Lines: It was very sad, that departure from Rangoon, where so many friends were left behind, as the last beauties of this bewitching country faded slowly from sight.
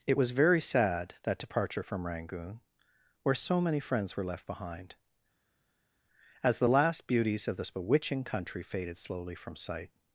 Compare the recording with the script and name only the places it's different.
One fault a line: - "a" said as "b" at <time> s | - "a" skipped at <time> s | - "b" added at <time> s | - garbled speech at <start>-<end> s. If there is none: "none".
none